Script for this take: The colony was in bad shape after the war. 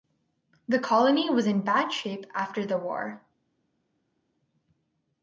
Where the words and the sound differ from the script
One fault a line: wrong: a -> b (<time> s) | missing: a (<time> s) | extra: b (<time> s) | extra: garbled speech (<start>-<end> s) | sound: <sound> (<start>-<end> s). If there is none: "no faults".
no faults